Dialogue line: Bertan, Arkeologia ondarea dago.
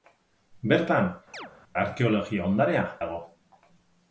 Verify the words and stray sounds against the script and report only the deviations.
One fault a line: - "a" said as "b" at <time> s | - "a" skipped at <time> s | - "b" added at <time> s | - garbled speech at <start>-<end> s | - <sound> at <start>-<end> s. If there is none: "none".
- chirp at 1.3-1.5 s